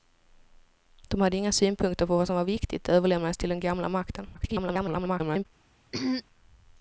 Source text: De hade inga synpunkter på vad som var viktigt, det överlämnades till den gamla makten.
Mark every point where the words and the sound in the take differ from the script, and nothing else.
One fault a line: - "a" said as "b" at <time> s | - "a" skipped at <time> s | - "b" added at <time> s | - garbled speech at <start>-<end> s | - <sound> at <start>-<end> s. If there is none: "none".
- garbled speech at 4.3-5.5 s
- throat clearing at 5.9-6.2 s